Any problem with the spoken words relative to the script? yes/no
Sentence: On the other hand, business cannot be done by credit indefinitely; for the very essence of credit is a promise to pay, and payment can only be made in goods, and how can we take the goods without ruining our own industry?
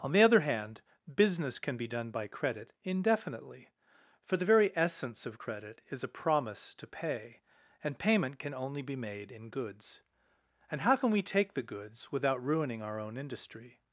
yes